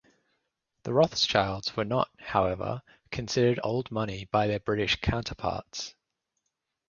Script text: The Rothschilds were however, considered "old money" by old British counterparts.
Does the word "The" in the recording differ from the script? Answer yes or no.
no